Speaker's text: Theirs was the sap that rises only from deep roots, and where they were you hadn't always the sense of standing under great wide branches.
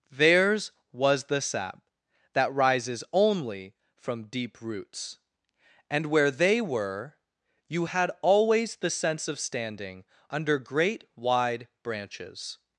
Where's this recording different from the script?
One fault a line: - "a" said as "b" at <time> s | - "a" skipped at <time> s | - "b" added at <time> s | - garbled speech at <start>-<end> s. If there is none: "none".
- "hadn't" said as "had" at 7.8 s